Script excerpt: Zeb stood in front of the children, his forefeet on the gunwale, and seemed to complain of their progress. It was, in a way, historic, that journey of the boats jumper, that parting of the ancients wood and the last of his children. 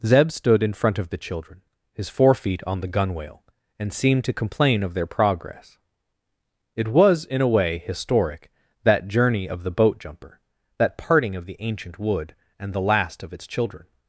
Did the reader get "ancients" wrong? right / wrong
wrong